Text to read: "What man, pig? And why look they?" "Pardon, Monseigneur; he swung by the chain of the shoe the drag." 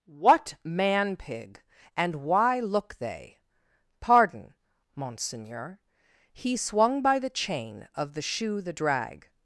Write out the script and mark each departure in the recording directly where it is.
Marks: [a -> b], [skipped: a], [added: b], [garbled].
"What man, pig? And why look they?" "Pardon, Monseigneur; he swung by the chain of the shoe the drag."